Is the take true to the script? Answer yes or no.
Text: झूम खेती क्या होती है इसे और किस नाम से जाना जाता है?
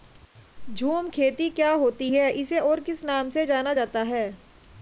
yes